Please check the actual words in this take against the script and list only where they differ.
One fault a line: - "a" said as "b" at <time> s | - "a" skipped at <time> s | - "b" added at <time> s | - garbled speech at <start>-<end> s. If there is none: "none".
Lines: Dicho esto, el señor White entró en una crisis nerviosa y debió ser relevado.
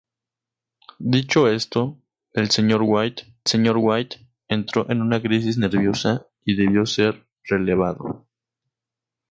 - "señor White" added at 3.5 s